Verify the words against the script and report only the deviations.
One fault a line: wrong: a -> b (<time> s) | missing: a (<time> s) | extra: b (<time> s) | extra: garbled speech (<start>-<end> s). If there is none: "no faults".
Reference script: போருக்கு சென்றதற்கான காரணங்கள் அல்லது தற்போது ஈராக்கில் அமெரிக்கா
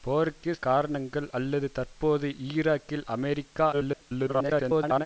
missing: சென்றதற்கான (0.5 s)
extra: garbled speech (3.7-5.1 s)